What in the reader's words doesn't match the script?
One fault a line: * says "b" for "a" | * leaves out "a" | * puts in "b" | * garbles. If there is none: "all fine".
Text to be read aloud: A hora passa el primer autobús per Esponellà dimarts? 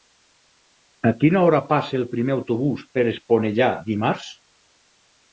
* puts in "quina"